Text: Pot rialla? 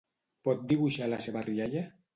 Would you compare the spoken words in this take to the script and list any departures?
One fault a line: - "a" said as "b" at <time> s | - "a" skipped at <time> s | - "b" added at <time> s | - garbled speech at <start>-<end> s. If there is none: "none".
- "dibuixar la seva" added at 0.7 s